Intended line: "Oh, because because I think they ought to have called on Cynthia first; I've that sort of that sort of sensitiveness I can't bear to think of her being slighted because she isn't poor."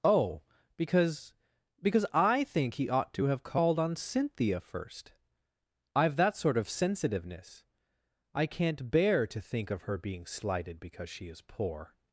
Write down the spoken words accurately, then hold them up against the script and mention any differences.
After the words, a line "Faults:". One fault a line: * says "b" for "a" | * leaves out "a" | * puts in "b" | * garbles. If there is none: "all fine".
"Oh, because because I think he ought to have called on Cynthia first; I've that sort of sensitiveness I can't bear to think of her being slighted because she is poor."
Faults:
* says "he" for "they"
* leaves out "that sort of"
* says "is" for "isn't"